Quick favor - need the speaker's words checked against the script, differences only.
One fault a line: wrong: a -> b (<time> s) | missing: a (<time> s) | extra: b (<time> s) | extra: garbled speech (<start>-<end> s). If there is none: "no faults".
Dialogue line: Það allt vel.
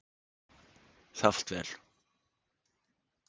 no faults